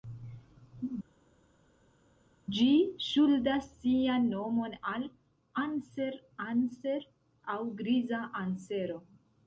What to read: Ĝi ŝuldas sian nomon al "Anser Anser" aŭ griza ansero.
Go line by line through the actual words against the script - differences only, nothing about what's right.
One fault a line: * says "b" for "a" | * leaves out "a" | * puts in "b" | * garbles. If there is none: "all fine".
all fine